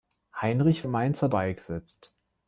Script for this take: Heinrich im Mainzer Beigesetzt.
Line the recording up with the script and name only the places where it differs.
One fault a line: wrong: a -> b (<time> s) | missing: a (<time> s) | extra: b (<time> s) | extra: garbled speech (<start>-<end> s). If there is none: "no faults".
no faults